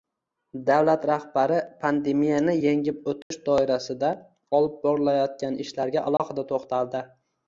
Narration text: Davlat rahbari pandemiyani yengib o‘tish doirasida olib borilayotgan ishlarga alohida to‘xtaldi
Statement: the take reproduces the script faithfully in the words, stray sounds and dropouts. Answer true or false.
false